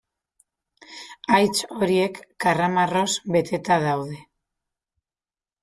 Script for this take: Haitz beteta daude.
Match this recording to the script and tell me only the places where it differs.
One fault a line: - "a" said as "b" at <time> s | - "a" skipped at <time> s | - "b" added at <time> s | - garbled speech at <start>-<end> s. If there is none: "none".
- "horiek karramarroz" added at 1.8 s